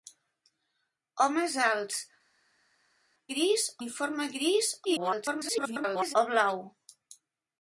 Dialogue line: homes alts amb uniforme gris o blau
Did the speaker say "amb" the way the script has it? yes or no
no